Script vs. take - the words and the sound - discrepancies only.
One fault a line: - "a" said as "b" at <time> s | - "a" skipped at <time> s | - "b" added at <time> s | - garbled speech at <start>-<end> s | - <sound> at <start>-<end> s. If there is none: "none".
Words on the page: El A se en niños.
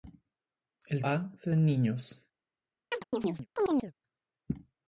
- chirp at 2.9-3.9 s